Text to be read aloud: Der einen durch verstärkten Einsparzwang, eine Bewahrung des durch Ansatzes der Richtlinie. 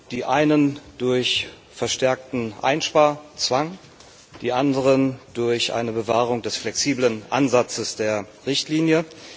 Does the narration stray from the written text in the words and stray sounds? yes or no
yes